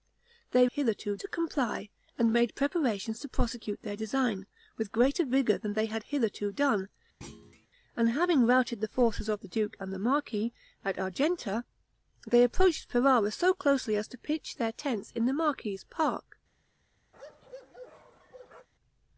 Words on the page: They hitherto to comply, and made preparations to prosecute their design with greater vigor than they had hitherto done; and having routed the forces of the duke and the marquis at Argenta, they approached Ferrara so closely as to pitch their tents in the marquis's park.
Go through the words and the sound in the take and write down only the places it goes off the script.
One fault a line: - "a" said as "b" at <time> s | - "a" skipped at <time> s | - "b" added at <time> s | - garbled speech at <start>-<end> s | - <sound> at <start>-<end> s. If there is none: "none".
- thud at 7.2-7.7 s
- bark at 17.1-18.7 s